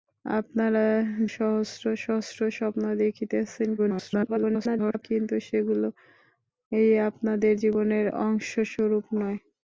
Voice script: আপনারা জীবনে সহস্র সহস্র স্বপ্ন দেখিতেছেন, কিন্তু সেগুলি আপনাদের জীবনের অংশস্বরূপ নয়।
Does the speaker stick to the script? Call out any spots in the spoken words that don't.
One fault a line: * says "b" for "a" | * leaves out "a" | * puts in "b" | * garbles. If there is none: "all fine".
* leaves out "জীবনে"
* garbles